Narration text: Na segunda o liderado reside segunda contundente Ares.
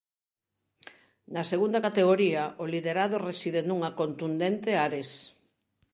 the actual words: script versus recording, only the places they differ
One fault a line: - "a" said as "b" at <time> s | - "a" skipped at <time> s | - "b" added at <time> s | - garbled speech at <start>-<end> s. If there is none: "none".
- "categoría" added at 1.9 s
- "segunda" said as "nunha" at 3.6 s